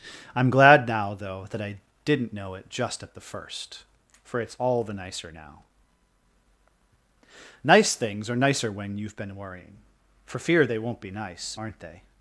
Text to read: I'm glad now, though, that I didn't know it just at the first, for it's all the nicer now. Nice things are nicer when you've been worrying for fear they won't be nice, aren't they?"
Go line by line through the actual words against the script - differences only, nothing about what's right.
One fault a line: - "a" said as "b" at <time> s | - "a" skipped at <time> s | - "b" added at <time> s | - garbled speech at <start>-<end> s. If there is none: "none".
none